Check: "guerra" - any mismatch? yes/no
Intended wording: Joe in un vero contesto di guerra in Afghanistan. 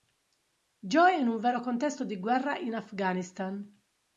no